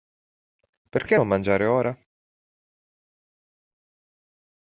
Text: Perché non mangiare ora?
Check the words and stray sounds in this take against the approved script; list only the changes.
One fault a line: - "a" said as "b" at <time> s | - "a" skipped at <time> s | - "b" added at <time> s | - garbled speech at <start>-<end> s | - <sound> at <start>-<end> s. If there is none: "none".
none